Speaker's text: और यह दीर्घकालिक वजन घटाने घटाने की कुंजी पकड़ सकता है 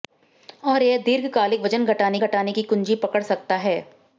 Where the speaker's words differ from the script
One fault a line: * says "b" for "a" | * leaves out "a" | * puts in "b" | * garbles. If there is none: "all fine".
all fine